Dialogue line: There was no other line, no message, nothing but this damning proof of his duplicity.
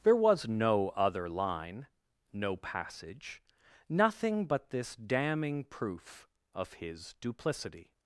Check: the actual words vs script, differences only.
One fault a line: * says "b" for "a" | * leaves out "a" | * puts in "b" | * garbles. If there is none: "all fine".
* says "passage" for "message"